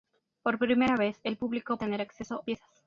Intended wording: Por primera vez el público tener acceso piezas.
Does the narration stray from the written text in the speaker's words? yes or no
no